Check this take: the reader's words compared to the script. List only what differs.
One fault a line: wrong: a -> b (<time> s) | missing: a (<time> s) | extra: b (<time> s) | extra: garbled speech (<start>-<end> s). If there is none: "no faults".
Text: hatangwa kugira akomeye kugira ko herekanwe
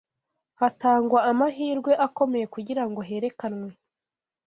wrong: kugira -> amahirwe (1.3 s)
wrong: ko -> ngo (2.9 s)